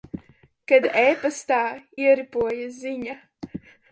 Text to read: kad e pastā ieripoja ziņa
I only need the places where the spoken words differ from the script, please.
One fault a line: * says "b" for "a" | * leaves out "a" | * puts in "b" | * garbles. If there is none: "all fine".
all fine